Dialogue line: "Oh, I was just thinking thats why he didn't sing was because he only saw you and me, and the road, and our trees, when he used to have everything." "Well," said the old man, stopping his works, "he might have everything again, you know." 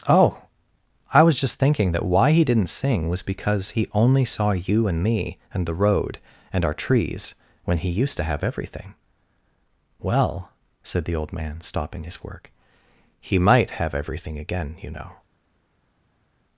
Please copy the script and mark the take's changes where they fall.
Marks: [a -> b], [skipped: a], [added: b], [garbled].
"Oh, I was just thinking [thats -> that] why he didn't sing was because he only saw you and me, and the road, and our trees, when he used to have everything." "Well," said the old man, stopping his [works, -> work] "he might have everything again, you know."